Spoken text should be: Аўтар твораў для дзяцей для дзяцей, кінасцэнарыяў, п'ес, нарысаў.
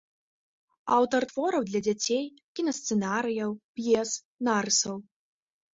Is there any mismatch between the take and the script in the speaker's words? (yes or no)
yes